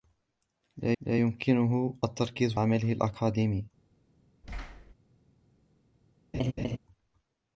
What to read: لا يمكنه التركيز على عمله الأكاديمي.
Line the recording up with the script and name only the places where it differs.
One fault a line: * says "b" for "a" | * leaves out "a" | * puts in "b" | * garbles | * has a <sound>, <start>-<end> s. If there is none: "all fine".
* puts in "لا"
* leaves out "على"
* has a thud, 4.4-4.9 s
* has a laugh, 6.3-6.8 s